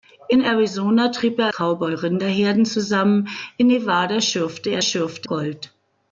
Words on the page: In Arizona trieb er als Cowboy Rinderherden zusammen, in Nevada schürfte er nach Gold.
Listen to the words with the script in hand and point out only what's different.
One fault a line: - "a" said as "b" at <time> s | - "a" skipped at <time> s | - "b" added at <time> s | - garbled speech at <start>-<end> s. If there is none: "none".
- "als" skipped at 1.5 s
- "nach" said as "schürfte" at 4.8 s